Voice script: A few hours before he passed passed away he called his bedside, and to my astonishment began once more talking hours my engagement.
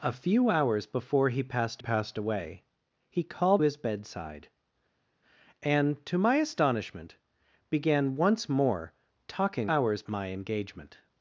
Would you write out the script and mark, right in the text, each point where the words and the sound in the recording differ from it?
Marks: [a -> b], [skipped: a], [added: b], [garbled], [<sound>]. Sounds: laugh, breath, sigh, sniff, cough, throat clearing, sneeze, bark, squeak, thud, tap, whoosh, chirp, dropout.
A few hours before he passed passed away he called his bedside, and to my astonishment began once more talking hours my engagement.